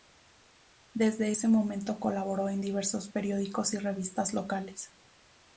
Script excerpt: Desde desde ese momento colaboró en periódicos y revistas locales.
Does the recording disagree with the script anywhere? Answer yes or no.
yes